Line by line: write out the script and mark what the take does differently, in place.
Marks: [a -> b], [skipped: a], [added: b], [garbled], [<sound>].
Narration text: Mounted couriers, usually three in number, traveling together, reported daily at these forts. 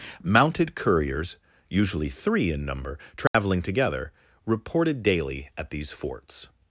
Mounted couriers, usually three in number, traveling [dropout] together, reported daily at these forts.